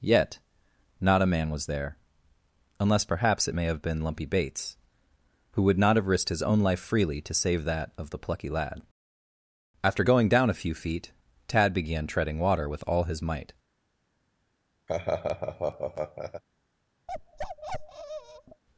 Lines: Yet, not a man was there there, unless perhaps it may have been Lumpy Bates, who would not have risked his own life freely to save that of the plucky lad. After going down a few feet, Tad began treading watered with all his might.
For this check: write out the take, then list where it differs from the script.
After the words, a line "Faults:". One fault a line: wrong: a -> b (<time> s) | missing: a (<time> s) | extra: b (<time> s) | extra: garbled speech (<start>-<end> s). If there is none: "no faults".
Yet, not a man was there, unless perhaps it may have been Lumpy Bates, who would not have risked his own life freely to save that of the plucky lad. After going down a few feet, Tad began treading water with all his might.
Faults:
missing: there (2.0 s)
wrong: watered -> water (12.4 s)